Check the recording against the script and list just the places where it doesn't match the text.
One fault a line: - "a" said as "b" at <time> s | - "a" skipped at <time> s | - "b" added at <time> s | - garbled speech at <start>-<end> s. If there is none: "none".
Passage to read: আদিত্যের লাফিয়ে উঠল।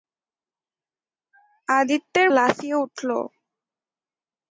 none